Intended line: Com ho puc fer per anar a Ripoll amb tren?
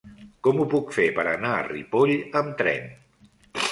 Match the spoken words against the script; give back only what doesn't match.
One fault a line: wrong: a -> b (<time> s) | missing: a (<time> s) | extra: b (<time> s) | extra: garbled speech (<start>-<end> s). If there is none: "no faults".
no faults